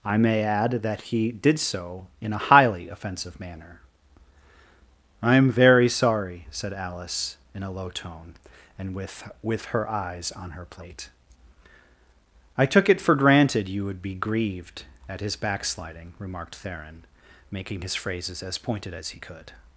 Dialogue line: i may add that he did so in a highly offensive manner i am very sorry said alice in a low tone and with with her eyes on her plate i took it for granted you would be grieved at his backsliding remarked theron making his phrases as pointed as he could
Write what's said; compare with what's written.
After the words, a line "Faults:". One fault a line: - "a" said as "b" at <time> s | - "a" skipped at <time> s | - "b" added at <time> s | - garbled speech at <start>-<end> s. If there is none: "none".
i may add that he did so in a highly offensive manner i am very sorry said alice in a low tone and with with her eyes on her plate i took it for granted you would be grieved at his backsliding remarked theron making his phrases as pointed as he could
Faults:
none